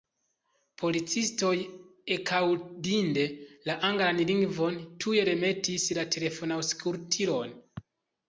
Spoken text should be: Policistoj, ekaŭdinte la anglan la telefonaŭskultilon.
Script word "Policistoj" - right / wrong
right